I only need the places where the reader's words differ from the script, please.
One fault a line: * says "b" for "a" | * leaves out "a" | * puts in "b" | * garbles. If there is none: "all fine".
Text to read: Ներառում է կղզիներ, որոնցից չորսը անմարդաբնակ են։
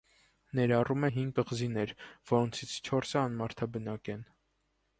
* puts in "հինգ"